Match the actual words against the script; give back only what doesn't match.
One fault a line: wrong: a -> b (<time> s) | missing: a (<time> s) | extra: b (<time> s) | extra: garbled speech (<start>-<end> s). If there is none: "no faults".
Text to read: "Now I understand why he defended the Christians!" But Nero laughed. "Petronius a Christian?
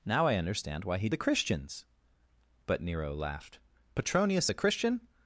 missing: defended (1.1 s)